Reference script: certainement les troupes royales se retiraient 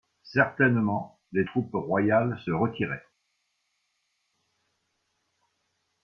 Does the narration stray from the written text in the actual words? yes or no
no